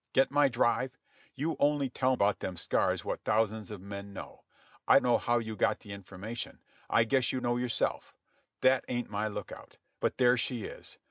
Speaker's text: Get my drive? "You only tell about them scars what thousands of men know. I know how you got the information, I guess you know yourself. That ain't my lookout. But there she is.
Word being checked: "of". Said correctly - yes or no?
yes